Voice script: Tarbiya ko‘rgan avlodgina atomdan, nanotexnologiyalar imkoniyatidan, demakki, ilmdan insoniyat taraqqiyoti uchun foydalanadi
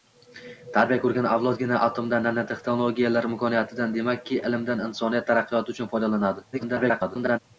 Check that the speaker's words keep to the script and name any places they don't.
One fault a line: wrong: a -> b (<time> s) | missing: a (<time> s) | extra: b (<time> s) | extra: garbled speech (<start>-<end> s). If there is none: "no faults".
extra: garbled speech (6.5-7.4 s)